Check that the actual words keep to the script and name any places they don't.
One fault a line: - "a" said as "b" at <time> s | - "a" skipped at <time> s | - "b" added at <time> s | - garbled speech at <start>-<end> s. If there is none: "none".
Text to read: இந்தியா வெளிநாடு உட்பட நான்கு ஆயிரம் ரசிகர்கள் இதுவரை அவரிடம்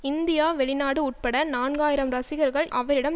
- "இதுவரை" skipped at 2.7 s